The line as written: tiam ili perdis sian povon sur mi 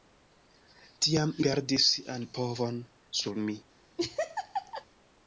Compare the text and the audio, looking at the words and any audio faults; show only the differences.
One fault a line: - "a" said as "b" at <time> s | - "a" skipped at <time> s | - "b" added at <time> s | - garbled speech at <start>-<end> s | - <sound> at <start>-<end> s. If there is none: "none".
- "ili" skipped at 1.4 s
- laugh at 4.0-4.8 s